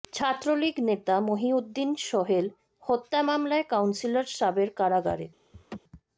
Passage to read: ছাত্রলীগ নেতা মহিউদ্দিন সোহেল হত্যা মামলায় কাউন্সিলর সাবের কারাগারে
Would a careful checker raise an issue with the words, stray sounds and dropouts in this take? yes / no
yes